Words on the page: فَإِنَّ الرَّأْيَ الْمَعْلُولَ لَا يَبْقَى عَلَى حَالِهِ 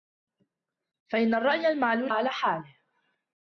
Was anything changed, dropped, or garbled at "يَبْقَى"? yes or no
yes